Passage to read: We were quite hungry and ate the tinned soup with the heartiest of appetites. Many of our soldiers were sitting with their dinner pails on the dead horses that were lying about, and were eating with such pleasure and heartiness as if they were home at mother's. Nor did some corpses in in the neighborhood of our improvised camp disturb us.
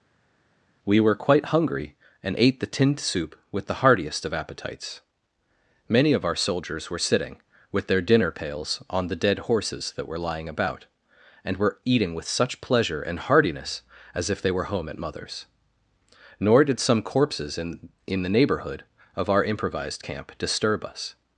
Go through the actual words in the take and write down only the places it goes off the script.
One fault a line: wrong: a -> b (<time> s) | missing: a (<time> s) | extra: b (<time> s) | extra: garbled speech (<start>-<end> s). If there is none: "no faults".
no faults